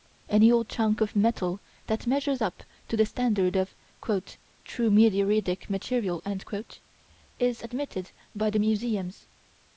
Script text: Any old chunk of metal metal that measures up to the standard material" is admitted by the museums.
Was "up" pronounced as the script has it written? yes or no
yes